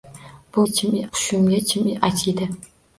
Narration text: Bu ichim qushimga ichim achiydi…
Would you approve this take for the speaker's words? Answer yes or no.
yes